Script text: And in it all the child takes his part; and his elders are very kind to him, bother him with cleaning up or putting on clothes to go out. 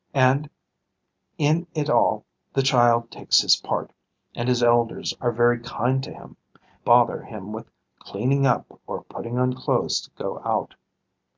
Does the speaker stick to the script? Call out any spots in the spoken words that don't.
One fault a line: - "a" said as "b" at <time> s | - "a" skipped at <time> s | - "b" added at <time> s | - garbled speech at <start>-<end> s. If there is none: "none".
none